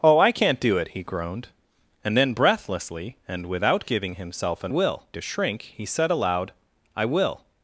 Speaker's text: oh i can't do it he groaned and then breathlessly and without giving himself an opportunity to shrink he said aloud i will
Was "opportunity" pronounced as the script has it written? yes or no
no